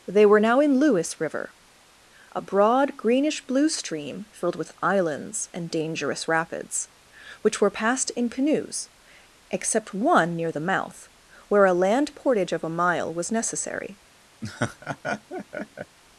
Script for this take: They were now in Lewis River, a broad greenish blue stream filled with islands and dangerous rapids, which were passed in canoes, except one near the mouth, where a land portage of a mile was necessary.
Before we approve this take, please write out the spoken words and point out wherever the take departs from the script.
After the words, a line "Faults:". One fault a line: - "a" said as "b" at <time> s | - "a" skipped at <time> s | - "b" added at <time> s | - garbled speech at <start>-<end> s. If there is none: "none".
They were now in Lewis River, a broad greenish blue stream filled with islands and dangerous rapids, which were passed in canoes, except one near the mouth, where a land portage of a mile was necessary.
Faults:
none